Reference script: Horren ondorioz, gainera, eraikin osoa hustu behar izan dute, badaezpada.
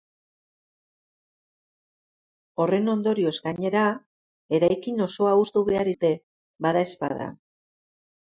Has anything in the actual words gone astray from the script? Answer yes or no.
yes